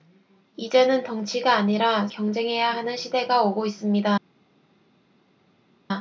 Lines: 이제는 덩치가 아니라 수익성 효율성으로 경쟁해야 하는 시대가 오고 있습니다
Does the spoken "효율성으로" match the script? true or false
false